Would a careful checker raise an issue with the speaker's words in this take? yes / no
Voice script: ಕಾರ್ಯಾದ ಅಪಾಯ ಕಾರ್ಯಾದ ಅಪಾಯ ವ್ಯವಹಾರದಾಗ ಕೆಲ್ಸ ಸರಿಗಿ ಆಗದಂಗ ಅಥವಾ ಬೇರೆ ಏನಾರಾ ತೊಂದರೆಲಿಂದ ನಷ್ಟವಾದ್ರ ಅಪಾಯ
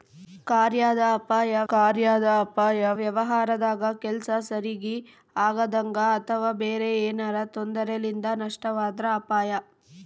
no